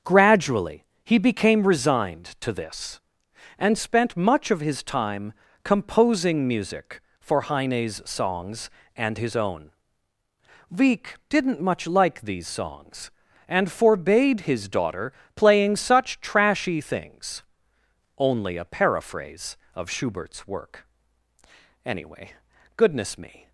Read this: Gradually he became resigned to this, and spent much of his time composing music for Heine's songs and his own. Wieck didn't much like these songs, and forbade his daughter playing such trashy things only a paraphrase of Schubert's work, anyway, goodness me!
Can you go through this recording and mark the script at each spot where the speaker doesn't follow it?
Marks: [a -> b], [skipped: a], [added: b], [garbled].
Gradually he became resigned to this, and spent much of his time composing music for Heine's songs and his own. Wieck didn't much like these songs, and forbade his daughter playing such trashy things only a paraphrase of Schubert's work, anyway, goodness me!